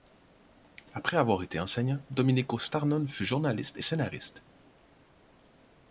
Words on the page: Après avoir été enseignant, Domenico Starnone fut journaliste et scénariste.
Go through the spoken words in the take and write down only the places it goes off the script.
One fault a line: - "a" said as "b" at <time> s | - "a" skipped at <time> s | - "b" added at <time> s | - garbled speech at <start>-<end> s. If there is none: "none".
none